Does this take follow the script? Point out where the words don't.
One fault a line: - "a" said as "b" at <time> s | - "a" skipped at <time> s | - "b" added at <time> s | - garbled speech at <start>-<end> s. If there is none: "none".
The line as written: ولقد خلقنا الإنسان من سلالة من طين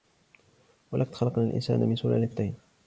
- "من" skipped at 2.3 s